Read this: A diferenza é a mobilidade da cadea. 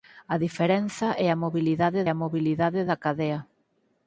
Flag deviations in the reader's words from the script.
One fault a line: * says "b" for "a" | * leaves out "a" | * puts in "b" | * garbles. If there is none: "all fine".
* puts in "a mobilidade"